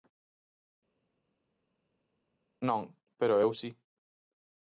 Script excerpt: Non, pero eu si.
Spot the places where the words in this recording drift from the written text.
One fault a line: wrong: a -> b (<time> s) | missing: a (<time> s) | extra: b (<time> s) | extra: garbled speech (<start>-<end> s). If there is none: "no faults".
no faults